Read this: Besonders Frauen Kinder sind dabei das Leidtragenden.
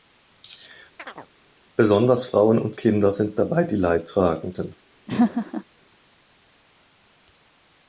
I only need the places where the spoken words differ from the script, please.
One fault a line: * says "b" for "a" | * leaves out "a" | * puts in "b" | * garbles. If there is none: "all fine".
* puts in "und"
* says "die" for "das"